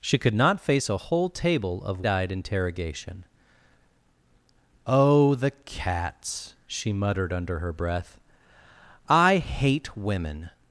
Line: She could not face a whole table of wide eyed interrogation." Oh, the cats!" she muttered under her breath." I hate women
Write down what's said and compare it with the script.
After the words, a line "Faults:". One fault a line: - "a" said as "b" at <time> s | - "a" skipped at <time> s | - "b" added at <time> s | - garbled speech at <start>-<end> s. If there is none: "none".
She could not face a whole table of eyed interrogation." Oh, the cats!" she muttered under her breath." I hate women
Faults:
- "wide" skipped at 2.0 s